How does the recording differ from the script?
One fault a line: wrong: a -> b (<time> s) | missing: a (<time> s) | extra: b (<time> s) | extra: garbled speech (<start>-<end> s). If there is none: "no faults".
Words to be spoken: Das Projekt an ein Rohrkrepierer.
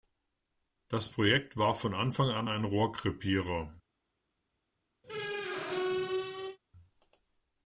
extra: war von Anfang (1.6 s)